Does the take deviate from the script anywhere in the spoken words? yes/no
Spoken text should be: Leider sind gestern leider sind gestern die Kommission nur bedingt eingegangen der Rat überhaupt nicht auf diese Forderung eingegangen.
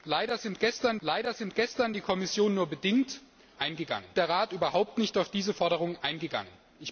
no